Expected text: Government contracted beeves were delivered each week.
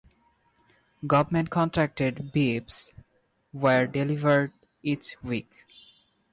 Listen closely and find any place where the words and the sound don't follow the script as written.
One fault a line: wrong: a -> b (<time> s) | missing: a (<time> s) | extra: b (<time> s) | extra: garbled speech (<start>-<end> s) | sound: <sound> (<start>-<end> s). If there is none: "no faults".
no faults